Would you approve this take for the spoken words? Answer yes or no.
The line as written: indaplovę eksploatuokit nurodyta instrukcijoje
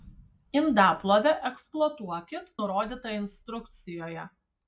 yes